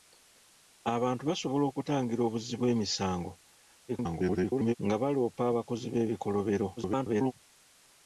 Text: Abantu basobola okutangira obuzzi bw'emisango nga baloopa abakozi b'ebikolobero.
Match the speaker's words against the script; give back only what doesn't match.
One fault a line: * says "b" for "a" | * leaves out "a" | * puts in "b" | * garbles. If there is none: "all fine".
* garbles
* garbles